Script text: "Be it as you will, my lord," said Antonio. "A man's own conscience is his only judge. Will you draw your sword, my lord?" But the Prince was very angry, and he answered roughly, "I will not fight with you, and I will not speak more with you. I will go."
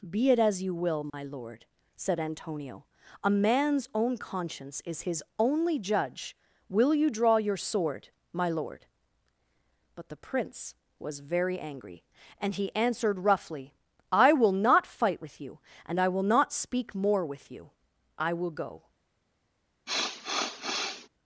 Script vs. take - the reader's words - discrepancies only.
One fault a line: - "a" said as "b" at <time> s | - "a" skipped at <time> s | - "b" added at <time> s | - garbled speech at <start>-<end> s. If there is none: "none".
none